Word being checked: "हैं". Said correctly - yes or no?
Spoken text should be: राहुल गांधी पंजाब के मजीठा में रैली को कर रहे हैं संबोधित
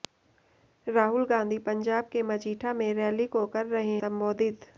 no